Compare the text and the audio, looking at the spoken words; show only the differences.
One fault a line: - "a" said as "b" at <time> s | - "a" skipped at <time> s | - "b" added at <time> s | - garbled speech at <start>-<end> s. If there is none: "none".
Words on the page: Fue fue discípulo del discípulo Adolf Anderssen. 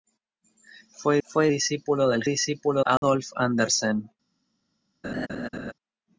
none